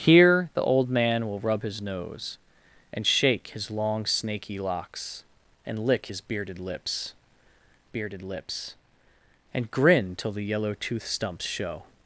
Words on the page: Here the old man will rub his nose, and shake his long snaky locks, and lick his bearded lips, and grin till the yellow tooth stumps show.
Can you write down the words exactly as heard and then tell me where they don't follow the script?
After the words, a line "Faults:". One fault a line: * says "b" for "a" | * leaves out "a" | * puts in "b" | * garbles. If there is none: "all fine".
Here the old man will rub his nose, and shake his long snaky locks, and lick his bearded lips bearded lips, and grin till the yellow tooth stumps show.
Faults:
* puts in "bearded lips"